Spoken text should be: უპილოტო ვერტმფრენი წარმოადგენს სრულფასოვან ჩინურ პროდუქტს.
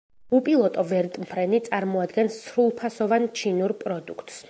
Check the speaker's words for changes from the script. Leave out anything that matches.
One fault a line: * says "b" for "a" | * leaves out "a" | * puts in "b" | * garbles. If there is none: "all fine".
all fine